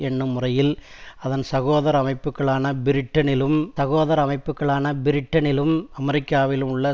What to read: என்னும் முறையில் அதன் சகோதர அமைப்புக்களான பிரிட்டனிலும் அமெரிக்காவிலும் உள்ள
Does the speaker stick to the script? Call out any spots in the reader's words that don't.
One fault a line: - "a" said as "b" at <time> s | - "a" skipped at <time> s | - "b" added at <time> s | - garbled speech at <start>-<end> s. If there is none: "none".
- "சகோதர அமைப்புக்களான பிரிட்டனிலும்" added at 3.8 s